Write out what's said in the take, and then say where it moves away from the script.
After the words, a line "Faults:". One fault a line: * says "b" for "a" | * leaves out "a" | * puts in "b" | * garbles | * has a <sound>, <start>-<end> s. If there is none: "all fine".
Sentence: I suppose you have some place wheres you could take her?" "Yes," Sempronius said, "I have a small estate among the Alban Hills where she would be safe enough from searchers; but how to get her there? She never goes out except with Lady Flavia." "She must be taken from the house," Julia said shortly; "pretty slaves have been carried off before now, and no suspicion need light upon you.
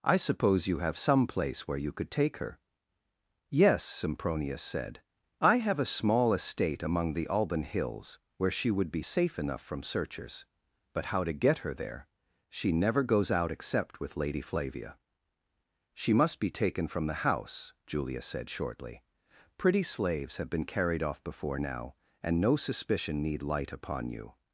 I suppose you have some place where you could take her?" "Yes," Sempronius said, "I have a small estate among the Alban Hills where she would be safe enough from searchers; but how to get her there? She never goes out except with Lady Flavia." "She must be taken from the house," Julia said shortly; "pretty slaves have been carried off before now, and no suspicion need light upon you.
Faults:
* says "where" for "wheres"